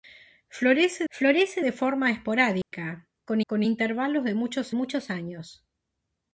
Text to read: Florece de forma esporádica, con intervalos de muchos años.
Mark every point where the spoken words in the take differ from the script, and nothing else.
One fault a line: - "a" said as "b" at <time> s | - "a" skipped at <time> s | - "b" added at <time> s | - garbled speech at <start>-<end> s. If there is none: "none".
- "florece" added at 1.1 s
- "con" added at 3.5 s
- "muchos" added at 4.7 s